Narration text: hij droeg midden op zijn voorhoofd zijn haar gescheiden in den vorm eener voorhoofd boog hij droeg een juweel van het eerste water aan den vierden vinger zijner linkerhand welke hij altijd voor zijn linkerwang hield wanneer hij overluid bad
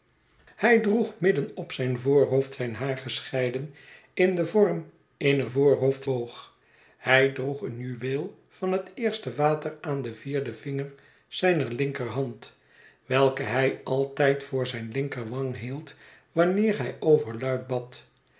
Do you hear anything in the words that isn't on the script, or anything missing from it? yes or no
no